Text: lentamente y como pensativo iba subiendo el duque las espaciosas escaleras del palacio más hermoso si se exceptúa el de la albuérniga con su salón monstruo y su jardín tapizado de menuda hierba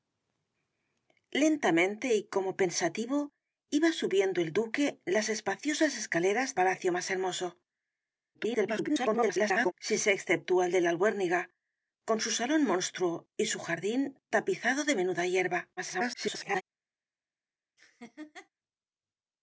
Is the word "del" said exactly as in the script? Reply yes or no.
no